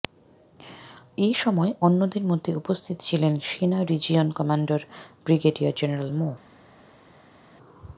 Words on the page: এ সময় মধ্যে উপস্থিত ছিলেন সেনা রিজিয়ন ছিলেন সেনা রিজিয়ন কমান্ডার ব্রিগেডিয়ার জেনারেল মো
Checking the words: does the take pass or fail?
fail